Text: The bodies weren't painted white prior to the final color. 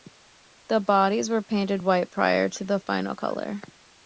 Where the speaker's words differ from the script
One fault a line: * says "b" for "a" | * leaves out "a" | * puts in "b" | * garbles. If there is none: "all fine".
* says "were" for "weren't"